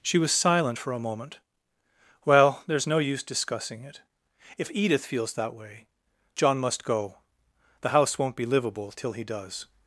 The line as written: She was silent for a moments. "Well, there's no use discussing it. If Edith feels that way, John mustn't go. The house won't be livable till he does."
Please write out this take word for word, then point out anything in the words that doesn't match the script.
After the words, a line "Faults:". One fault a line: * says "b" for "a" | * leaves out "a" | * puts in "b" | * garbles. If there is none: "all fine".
She was silent for a moment. "Well, there's no use discussing it. If Edith feels that way, John must go. The house won't be livable till he does."
Faults:
* says "moment" for "moments"
* says "must" for "mustn't"